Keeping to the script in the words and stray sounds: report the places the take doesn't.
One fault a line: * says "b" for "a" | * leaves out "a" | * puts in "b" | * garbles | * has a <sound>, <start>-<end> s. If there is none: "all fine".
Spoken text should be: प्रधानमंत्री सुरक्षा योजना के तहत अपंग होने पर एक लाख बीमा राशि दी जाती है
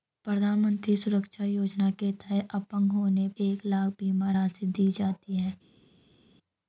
* leaves out "पर"